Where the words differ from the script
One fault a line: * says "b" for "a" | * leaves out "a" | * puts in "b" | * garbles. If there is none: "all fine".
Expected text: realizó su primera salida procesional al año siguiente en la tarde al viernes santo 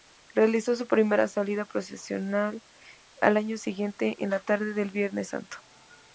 * says "del" for "al"